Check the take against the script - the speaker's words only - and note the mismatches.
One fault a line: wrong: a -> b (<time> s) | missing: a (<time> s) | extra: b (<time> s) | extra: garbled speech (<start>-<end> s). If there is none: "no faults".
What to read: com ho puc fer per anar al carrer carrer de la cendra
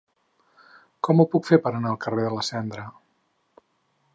missing: carrer (2.2 s)